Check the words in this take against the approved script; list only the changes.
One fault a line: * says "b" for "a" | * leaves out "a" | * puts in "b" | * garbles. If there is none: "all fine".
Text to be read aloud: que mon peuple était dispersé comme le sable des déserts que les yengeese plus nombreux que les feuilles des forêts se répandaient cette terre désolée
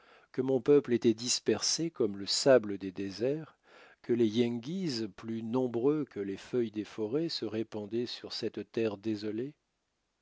* puts in "sur"